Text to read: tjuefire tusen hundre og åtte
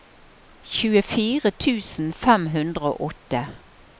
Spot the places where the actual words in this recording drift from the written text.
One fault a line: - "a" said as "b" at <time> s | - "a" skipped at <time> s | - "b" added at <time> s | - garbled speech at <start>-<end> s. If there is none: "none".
- "fem" added at 2.2 s